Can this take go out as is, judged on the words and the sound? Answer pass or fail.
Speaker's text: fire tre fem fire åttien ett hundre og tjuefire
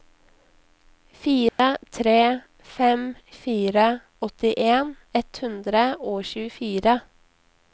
fail